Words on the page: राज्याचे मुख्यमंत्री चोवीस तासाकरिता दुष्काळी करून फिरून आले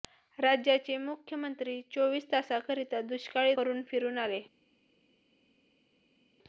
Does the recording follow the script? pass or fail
pass